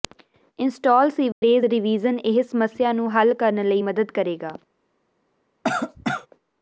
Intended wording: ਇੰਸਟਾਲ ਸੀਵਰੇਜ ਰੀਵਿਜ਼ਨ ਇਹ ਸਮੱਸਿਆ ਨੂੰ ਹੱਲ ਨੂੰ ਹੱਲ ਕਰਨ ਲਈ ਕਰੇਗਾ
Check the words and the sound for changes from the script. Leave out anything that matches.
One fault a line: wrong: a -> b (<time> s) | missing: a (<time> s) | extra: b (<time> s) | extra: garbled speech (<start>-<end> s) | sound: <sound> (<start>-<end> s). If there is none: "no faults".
sound: dropout (1.3-1.4 s)
missing: ਨੂੰ ਹੱਲ (3.3 s)
extra: ਮਦਦ (3.8 s)
sound: cough (5.6-6.3 s)